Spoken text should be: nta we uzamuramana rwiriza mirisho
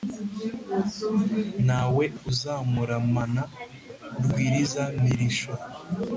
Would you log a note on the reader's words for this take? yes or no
no